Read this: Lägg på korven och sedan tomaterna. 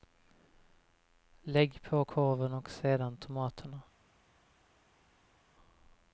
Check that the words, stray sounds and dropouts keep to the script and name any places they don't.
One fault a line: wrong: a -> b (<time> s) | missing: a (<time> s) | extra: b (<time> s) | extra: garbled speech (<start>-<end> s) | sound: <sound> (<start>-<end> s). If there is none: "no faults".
no faults